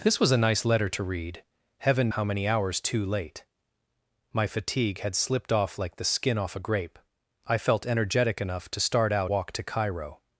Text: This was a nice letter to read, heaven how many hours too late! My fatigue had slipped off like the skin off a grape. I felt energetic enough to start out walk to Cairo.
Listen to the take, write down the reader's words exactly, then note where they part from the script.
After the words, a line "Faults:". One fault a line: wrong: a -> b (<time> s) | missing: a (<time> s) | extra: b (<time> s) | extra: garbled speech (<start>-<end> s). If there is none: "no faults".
This was a nice letter to read, heaven how many hours too late! My fatigue had slipped off like the skin off a grape. I felt energetic enough to start out walk to Cairo.
Faults:
no faults